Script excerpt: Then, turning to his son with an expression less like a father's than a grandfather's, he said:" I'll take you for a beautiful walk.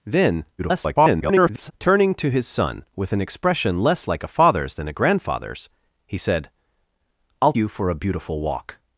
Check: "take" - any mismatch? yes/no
yes